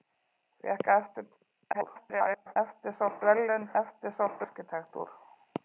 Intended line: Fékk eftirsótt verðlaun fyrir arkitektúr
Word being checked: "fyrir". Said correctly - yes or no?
no